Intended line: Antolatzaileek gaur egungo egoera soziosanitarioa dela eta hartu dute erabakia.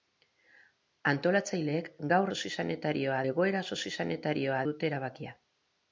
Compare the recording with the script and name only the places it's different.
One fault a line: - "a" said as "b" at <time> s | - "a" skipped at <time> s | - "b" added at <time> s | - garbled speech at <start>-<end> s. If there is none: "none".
- "egungo" said as "soziosanitarioa" at 2.4 s
- "dela eta hartu" skipped at 4.6 s